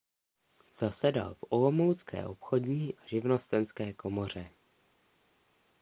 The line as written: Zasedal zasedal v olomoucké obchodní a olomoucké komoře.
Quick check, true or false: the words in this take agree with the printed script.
false